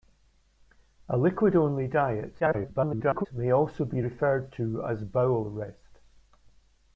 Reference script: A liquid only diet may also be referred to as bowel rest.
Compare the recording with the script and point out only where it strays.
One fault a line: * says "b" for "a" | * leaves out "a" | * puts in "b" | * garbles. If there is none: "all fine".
* garbles